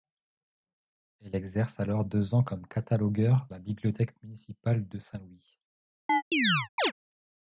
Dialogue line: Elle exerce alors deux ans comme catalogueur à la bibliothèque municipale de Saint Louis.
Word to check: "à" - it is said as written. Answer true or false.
false